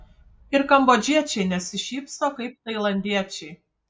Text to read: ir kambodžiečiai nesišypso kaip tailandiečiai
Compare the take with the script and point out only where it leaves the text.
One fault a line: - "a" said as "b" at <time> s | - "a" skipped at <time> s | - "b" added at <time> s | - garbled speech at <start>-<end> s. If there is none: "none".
none